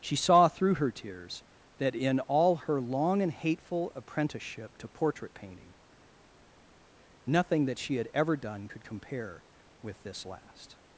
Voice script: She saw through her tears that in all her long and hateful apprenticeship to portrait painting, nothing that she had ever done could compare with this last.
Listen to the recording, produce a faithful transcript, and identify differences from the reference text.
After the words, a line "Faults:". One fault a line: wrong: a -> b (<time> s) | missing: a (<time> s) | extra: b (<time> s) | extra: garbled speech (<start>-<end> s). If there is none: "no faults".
She saw through her tears that in all her long and hateful apprenticeship to portrait painting, nothing that she had ever done could compare with this last.
Faults:
no faults